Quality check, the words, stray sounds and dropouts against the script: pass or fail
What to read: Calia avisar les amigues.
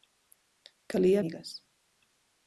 fail